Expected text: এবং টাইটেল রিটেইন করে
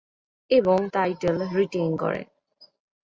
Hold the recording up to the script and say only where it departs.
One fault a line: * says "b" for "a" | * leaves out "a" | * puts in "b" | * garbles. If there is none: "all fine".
all fine